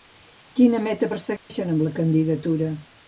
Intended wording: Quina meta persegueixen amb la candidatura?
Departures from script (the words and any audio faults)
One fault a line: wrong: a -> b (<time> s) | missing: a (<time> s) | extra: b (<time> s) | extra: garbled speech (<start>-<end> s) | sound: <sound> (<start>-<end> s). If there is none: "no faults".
sound: dropout (1.4-1.5 s)